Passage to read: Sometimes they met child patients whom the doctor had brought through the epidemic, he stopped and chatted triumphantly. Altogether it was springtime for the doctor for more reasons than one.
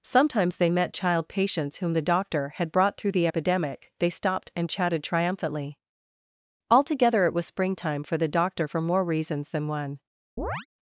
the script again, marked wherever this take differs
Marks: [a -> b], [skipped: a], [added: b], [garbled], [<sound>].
Sometimes they met child patients whom the doctor had brought through the epidemic, [he -> they] stopped and chatted triumphantly. Altogether it was springtime for the doctor for more reasons than one. [chirp]